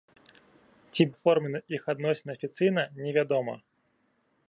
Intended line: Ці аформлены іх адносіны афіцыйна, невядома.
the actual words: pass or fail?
pass